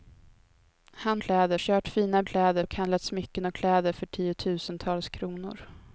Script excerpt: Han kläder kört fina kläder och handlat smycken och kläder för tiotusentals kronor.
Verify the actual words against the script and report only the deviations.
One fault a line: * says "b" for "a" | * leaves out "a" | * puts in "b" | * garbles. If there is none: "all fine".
all fine